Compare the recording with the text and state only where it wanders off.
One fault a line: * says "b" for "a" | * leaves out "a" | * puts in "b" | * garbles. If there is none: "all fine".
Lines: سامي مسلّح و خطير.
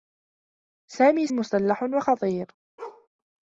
all fine